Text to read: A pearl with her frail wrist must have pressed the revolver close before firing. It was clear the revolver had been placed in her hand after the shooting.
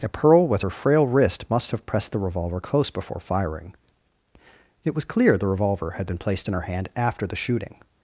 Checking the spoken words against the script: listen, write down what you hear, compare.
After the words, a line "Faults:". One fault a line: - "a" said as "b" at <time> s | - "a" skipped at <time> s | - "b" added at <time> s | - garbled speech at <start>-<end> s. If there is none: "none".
A pearl with her frail wrist must have pressed the revolver close before firing. It was clear the revolver had been placed in her hand after the shooting.
Faults:
none